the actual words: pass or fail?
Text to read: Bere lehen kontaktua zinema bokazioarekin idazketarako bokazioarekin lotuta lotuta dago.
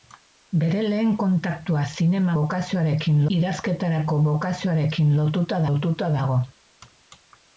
pass